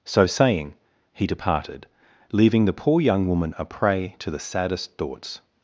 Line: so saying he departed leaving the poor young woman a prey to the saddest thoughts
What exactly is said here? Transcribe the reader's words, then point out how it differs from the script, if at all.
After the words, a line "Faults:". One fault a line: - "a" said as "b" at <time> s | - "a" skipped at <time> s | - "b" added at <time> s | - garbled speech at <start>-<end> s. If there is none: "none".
so saying he departed leaving the poor young woman a prey to the saddest thoughts
Faults:
none